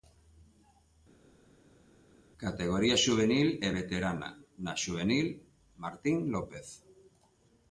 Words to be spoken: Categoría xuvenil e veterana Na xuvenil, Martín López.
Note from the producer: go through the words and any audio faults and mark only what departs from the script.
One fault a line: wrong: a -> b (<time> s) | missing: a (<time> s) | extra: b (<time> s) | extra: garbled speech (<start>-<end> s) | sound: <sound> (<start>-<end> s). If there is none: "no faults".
no faults